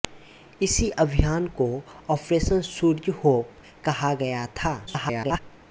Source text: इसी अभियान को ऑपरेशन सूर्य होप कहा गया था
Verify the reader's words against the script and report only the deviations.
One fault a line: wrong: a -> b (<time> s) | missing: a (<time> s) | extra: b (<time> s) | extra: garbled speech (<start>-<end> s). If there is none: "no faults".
extra: garbled speech (4.9-5.4 s)